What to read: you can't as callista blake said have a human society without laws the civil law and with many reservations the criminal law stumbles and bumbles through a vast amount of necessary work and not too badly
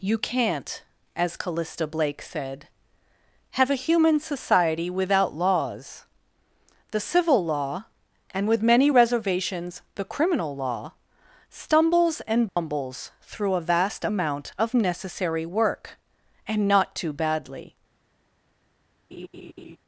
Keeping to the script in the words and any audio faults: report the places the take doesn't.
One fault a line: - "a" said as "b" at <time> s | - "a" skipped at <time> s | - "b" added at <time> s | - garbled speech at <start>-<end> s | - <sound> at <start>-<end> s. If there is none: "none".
- dropout at 12.5-12.6 s
- laugh at 19.1-19.8 s